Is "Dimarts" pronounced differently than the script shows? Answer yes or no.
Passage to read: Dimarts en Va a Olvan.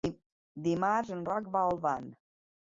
no